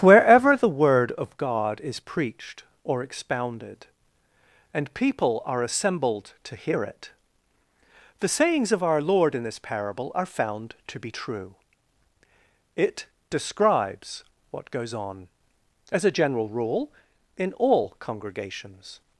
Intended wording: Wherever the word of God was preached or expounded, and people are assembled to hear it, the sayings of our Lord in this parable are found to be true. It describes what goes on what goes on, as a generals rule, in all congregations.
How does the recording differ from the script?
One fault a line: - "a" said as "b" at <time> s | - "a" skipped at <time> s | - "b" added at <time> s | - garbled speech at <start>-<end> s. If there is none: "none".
- "was" said as "is" at 1.8 s
- "what goes on" skipped at 15.3 s
- "generals" said as "general" at 16.1 s